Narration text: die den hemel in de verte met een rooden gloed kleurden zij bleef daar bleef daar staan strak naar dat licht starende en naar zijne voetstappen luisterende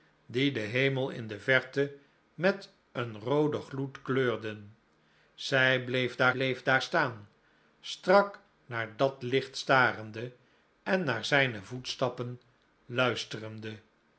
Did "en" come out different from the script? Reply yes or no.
no